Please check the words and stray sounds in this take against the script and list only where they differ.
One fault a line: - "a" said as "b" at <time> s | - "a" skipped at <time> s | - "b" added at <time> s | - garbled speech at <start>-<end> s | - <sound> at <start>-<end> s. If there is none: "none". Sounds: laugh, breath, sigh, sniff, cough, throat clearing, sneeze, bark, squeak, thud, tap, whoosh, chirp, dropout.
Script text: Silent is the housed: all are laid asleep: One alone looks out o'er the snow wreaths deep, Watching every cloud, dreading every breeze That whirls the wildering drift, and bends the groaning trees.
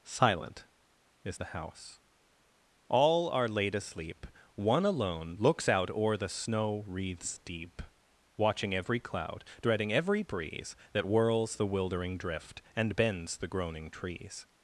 - "housed" said as "house" at 1.5 s